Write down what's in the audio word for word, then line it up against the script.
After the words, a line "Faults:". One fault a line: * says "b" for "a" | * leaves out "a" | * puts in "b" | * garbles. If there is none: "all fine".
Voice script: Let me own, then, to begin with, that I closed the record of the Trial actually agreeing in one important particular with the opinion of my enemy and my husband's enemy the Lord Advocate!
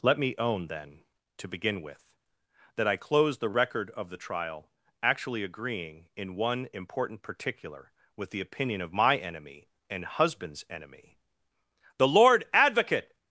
Let me own, then, to begin with, that I closed the record of the Trial actually agreeing in one important particular with the opinion of my enemy and husband's enemy the Lord Advocate!
Faults:
* leaves out "my"